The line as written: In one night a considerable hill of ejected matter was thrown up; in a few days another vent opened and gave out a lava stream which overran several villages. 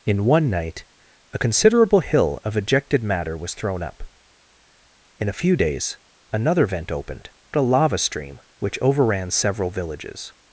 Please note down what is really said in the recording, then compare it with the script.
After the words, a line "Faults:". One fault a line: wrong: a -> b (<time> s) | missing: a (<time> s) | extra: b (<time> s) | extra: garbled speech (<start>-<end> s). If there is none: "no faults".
In one night a considerable hill of ejected matter was thrown up; in a few days another vent opened a lava stream which overran several villages.
Faults:
missing: and gave out (7.3 s)